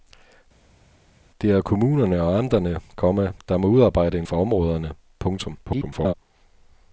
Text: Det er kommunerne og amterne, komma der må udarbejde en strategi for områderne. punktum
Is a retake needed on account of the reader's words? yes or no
yes